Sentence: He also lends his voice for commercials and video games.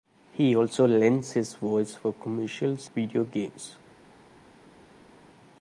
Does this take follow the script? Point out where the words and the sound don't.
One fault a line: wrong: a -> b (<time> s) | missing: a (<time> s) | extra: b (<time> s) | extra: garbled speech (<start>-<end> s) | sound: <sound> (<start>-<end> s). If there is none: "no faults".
missing: and (2.9 s)